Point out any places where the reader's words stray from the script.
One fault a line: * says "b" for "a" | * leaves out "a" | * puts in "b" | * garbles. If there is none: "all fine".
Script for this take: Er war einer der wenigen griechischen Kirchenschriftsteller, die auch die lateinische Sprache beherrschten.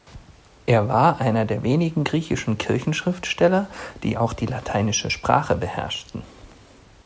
all fine